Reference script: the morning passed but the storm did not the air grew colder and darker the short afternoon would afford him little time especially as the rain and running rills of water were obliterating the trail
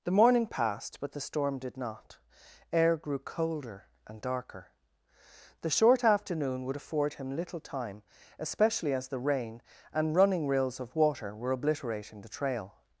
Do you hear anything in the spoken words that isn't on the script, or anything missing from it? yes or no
yes